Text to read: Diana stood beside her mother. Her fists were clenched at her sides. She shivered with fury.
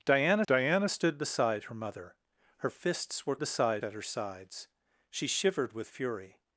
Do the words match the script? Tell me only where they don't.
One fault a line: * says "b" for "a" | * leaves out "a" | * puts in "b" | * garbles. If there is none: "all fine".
* puts in "diana"
* says "beside" for "clenched"